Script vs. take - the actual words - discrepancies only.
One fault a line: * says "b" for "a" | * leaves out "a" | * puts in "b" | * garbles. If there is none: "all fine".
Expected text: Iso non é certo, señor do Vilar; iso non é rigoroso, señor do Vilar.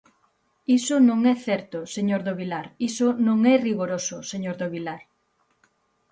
all fine